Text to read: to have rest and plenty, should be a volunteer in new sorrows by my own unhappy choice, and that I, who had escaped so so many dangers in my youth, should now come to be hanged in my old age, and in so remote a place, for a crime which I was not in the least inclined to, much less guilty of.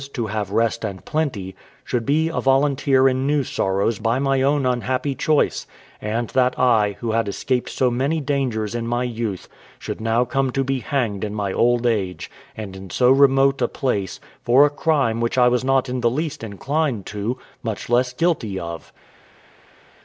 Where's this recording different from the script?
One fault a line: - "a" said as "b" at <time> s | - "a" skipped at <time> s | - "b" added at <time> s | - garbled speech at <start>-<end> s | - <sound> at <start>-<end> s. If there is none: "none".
- "so" skipped at 7.9 s